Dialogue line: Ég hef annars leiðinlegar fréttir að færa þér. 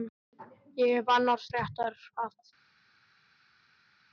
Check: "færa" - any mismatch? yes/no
yes